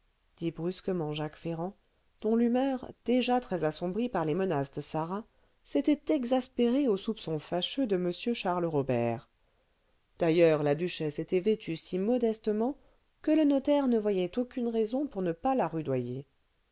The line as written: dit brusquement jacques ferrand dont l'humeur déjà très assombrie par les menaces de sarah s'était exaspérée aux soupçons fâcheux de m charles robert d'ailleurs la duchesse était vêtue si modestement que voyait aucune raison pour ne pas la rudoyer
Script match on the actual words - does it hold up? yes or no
no